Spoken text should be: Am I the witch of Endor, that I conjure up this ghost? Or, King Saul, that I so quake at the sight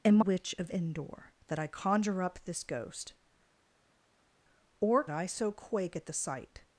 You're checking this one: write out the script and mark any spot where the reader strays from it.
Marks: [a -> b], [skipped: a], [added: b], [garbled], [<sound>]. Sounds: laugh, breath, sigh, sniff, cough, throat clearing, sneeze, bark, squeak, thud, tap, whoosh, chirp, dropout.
Am [skipped: I the] witch of Endor, that I conjure up this ghost? Or, [skipped: King Saul, that] I so quake at the sight